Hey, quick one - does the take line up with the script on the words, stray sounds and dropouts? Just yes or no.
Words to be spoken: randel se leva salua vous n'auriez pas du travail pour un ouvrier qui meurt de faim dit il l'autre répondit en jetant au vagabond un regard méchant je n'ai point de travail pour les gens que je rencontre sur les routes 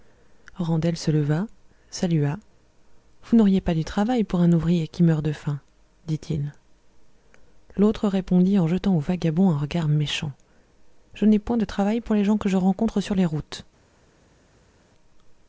yes